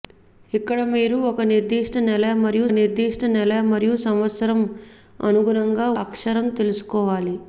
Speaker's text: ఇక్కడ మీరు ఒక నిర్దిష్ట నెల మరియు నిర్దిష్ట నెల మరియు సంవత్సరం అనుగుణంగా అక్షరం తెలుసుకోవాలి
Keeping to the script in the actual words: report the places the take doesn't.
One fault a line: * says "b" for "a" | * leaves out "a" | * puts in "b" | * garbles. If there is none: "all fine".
all fine